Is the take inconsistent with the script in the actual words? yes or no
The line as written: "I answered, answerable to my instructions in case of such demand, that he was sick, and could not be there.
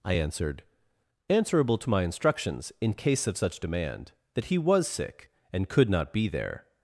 no